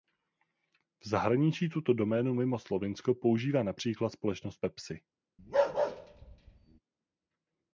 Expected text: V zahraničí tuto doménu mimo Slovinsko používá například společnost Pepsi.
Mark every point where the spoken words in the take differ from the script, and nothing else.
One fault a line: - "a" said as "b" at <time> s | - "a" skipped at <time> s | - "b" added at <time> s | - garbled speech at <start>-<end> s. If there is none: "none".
none